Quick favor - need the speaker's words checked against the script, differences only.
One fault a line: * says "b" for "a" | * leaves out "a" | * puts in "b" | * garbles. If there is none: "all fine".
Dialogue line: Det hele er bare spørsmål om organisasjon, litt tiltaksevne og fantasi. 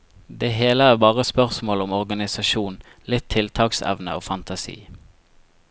all fine